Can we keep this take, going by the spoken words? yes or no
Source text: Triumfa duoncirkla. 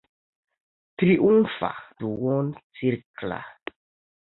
yes